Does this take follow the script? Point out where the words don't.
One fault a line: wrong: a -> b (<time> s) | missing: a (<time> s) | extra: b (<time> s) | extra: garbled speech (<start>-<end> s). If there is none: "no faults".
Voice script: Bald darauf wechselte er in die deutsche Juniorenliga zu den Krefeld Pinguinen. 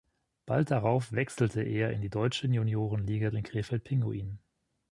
missing: zu (3.3 s)